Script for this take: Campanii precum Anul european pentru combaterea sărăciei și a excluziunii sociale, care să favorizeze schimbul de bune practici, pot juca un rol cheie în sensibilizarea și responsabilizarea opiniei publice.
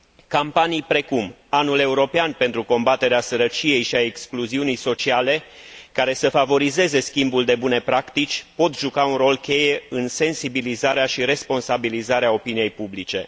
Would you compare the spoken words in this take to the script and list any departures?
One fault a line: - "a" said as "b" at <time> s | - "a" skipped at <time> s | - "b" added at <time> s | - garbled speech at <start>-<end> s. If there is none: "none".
none